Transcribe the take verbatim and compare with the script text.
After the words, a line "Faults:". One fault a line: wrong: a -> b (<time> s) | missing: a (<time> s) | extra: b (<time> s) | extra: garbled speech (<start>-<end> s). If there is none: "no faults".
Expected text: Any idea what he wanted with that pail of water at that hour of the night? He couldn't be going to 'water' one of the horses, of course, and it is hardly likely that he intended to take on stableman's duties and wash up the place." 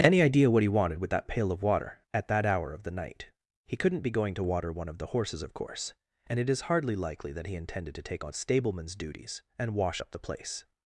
Any idea what he wanted with that pail of water at that hour of the night? He couldn't be going to 'water' one of the horses, of course, and it is hardly likely that he intended to take on stableman's duties and wash up the place."
Faults:
no faults